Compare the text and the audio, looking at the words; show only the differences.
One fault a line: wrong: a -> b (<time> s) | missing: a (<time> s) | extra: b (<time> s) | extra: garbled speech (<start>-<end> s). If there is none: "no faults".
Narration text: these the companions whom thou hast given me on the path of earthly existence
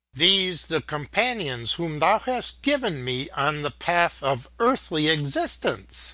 no faults